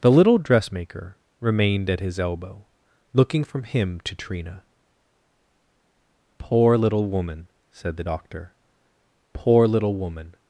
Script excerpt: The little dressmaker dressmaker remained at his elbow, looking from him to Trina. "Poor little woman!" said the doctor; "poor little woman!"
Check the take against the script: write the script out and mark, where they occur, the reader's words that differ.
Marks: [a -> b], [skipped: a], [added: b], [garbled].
The little dressmaker [skipped: dressmaker] remained at his elbow, looking from him to Trina. "Poor little woman!" said the doctor; "poor little woman!"